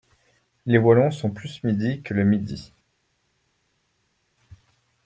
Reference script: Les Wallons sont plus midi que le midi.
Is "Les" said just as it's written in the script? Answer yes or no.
yes